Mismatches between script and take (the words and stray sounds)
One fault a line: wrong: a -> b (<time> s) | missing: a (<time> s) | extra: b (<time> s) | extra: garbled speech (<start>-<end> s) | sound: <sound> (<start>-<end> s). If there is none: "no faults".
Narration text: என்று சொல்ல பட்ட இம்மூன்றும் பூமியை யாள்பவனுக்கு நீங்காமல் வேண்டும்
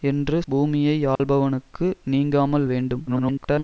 missing: சொல்ல பட்ட இம்மூன்றும் (0.4 s)
sound: dropout (1.2-1.2 s)
extra: garbled speech (3.1-3.6 s)